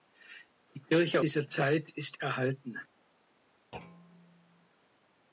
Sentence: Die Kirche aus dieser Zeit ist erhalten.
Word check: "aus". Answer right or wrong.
wrong